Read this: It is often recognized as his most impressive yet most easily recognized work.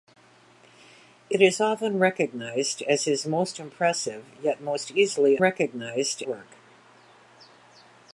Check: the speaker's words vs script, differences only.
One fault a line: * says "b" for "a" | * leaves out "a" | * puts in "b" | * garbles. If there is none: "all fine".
all fine